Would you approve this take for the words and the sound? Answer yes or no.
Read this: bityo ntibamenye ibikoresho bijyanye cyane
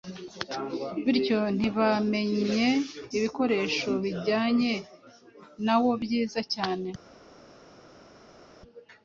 no